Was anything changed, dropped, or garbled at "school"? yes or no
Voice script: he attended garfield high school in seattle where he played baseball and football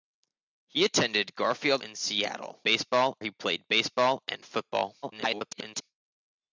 yes